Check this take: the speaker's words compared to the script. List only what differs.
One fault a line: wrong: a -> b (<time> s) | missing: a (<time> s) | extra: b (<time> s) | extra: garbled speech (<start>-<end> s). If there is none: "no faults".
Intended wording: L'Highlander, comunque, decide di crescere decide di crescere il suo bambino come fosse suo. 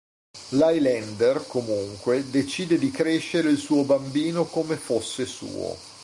missing: decide di crescere (3.5 s)